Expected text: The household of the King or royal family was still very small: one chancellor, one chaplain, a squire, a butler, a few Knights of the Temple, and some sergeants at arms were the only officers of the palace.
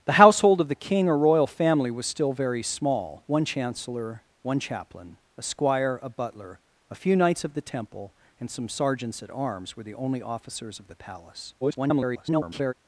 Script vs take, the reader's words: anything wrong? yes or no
yes